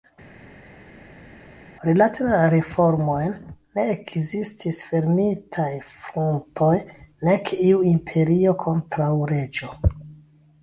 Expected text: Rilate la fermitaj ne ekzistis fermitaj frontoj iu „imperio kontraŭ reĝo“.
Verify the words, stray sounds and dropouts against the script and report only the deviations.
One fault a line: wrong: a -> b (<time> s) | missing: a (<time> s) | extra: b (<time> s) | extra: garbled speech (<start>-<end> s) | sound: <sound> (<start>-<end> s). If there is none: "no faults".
wrong: fermitaj -> reformojn (2.5 s)
extra: nek (7.3 s)